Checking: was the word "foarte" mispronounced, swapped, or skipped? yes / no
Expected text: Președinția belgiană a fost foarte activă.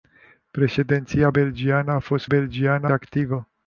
yes